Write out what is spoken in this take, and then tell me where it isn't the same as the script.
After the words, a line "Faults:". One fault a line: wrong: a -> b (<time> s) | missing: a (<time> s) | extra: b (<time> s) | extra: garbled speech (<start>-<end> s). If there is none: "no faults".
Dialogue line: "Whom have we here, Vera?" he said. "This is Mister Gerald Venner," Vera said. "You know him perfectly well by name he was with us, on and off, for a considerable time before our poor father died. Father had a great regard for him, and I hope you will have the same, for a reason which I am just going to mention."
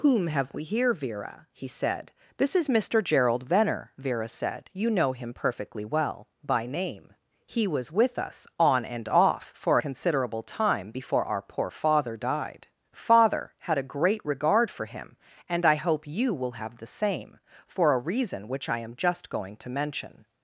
"Whom have we here, Vera?" he said. "This is Mister Gerald Venner," Vera said. "You know him perfectly well by name he was with us, on and off, for considerable time before our poor father died. Father had a great regard for him, and I hope you will have the same, for a reason which I am just going to mention."
Faults:
missing: a (9.8 s)